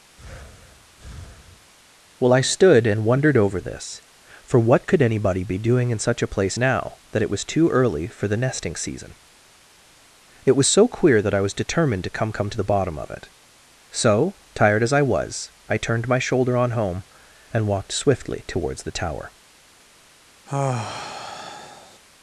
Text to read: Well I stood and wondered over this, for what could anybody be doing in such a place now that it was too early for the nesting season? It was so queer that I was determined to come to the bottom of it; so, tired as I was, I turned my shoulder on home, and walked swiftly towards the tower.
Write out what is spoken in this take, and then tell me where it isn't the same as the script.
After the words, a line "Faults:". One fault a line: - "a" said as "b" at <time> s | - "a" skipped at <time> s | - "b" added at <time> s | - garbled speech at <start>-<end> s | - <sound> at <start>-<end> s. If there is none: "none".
Well I stood and wondered over this, for what could anybody be doing in such a place now that it was too early for the nesting season? It was so queer that I was determined to come come to the bottom of it; so, tired as I was, I turned my shoulder on home, and walked swiftly towards the tower.
Faults:
- breath at 0.2-1.7 s
- "come" added at 12.3 s
- sigh at 20.5-22.0 s